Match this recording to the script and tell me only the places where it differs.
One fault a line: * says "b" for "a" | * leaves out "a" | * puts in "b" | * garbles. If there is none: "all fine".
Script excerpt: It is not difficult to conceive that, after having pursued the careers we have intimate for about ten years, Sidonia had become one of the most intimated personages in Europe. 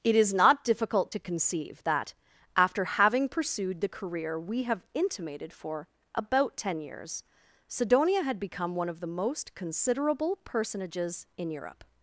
* says "career" for "careers"
* says "intimated" for "intimate"
* says "considerable" for "intimated"